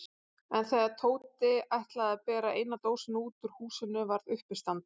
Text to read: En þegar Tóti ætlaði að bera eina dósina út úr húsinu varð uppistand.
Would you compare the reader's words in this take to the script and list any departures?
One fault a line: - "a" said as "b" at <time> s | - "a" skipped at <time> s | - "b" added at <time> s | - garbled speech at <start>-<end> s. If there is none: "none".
none